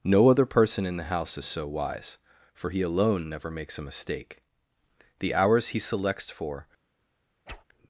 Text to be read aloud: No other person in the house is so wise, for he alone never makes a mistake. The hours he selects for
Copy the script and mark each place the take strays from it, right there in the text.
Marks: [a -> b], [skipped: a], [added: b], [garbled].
No other person in the house is so wise, for he alone never makes a mistake. The hours he selects for